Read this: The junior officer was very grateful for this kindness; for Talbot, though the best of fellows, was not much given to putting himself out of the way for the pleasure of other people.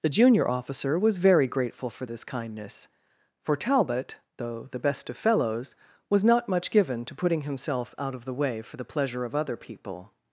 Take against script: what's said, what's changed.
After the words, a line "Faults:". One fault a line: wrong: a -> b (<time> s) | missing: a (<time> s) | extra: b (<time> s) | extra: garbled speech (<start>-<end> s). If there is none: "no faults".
The junior officer was very grateful for this kindness; for Talbot, though the best of fellows, was not much given to putting himself out of the way for the pleasure of other people.
Faults:
no faults